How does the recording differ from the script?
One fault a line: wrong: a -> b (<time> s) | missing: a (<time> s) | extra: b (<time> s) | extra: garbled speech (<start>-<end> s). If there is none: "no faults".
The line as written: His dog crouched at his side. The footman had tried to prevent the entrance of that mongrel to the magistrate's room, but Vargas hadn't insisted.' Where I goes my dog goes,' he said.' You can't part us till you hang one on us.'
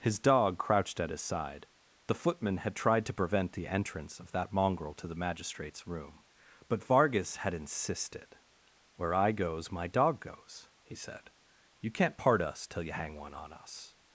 wrong: hadn't -> had (7.4 s)